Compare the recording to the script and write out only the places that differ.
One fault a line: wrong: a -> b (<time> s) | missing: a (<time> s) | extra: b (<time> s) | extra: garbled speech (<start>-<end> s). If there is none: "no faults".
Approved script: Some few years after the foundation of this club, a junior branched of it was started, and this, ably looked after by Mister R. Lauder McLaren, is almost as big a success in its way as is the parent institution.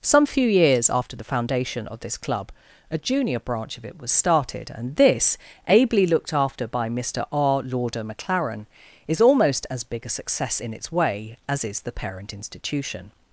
wrong: branched -> branch (3.4 s)